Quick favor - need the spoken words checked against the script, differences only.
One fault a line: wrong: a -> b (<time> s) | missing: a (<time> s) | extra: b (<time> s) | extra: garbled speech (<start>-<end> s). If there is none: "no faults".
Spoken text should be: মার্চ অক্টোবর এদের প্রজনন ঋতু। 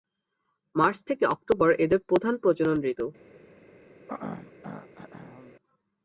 extra: থেকে (1.1 s)
extra: প্রধান (2.1 s)